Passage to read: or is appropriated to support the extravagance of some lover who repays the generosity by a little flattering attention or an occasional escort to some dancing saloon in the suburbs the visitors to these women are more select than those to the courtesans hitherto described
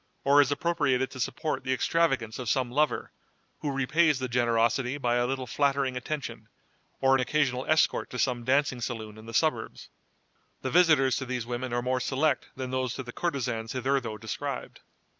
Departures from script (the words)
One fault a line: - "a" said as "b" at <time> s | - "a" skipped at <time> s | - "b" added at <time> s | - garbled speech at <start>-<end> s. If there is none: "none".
none